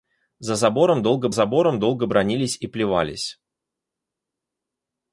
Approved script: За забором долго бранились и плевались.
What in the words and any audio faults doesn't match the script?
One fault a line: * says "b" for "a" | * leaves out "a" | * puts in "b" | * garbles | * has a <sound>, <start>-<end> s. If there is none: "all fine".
* puts in "забором долго"